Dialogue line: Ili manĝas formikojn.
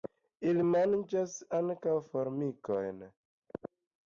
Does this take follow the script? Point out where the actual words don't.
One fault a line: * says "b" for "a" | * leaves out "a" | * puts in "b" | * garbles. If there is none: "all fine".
* puts in "ankaŭ"